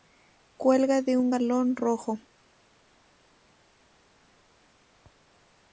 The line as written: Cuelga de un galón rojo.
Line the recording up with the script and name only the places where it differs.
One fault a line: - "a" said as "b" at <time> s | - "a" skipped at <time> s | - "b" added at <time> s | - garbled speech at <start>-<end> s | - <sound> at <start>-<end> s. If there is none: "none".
none